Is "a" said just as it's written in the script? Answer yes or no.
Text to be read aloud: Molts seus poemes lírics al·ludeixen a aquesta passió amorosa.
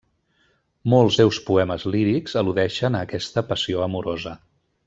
yes